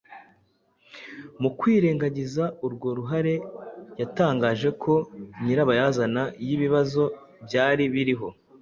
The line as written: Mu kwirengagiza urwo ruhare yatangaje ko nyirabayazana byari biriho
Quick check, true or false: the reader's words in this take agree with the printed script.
false